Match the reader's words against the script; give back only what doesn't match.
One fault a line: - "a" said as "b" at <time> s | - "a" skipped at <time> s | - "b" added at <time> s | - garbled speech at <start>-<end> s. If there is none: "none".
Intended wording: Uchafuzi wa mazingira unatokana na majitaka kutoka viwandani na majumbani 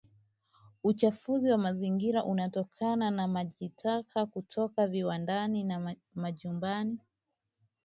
none